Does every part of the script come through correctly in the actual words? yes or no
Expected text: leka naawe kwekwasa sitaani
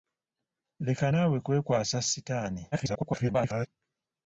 no